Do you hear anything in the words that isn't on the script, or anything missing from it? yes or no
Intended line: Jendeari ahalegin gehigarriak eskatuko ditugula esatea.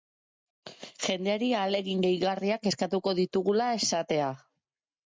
no